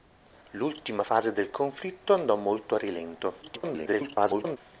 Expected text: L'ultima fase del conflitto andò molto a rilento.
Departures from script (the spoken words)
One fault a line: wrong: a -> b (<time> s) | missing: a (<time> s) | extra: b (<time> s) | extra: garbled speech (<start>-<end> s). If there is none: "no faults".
extra: garbled speech (3.4-4.6 s)